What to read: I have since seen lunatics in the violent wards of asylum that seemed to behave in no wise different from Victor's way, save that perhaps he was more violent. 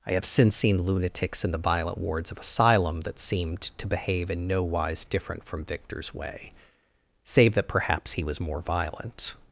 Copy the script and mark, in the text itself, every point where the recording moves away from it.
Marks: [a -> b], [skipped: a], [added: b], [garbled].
I have since seen lunatics in the violent wards of asylum that seemed to behave in no wise different from Victor's way, save that perhaps he was more violent.